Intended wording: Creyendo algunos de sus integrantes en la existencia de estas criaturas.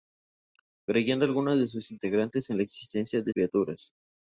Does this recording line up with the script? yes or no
no